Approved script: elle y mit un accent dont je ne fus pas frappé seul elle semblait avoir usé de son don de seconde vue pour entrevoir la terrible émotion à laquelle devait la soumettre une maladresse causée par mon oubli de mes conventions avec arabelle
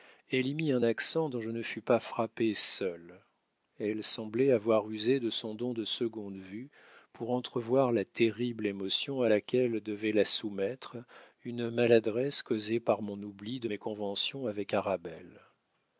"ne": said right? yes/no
yes